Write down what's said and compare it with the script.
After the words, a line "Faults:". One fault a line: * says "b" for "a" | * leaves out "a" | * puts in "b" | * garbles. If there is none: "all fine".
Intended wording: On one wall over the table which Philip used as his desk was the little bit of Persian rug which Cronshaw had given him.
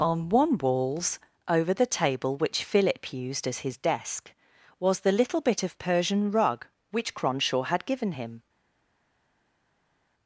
On one walls over the table which Philip used as his desk was the little bit of Persian rug which Cronshaw had given him.
Faults:
* says "walls" for "wall"